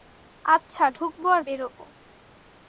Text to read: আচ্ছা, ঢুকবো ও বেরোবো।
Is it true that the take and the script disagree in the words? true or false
true